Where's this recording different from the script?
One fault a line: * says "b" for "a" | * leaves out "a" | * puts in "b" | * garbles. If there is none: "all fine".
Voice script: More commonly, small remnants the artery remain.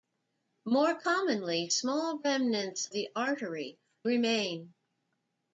all fine